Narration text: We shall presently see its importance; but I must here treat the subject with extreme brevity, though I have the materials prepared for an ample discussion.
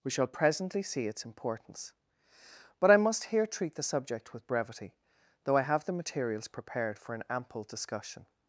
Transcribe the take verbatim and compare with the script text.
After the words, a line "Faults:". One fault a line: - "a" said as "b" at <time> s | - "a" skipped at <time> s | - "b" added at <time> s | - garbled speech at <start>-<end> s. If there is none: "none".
We shall presently see its importance; but I must here treat the subject with brevity, though I have the materials prepared for an ample discussion.
Faults:
- "extreme" skipped at 4.5 s